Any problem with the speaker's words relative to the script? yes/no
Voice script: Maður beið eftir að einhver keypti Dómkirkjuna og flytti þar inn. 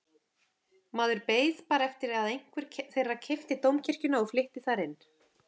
yes